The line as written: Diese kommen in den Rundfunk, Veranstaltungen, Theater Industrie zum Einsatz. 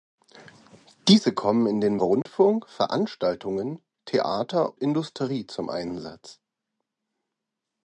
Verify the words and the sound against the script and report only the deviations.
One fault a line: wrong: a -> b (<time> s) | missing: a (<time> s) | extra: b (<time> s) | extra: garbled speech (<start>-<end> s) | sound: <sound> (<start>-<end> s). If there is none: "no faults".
sound: dropout (2.2-2.3 s)